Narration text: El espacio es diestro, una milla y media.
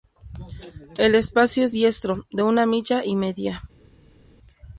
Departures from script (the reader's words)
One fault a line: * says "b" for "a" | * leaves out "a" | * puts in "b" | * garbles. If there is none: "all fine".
* puts in "de"